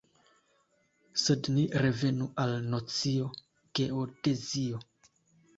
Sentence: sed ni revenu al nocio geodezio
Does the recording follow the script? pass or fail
pass